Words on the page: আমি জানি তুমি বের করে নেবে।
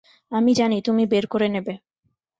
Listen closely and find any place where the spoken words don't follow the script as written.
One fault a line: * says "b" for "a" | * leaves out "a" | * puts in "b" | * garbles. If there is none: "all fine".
all fine